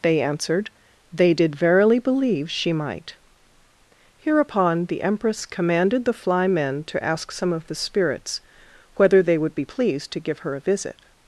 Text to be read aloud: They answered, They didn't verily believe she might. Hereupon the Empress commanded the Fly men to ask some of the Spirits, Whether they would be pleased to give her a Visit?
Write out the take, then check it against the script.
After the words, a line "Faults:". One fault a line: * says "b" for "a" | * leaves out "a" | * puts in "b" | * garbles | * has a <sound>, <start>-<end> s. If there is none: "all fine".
They answered, They did verily believe she might. Hereupon the Empress commanded the Fly men to ask some of the Spirits, Whether they would be pleased to give her a Visit?
Faults:
* says "did" for "didn't"